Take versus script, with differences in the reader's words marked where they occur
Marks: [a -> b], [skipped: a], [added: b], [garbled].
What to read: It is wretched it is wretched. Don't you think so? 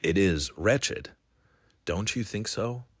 It is wretched [skipped: it is wretched.] Don't you think so?